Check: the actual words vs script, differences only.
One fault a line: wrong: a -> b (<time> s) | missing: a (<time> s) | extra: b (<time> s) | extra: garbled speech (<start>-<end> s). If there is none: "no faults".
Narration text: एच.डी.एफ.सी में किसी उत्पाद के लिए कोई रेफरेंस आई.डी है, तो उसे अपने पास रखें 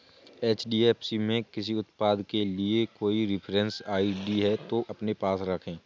missing: उसे (4.8 s)